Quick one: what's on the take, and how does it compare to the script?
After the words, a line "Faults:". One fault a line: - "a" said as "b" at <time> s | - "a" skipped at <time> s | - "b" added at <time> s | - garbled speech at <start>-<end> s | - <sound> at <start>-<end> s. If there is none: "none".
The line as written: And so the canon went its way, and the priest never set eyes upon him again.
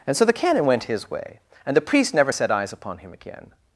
And so the canon went his way, and the priest never set eyes upon him again.
Faults:
- "its" said as "his" at 0.8 s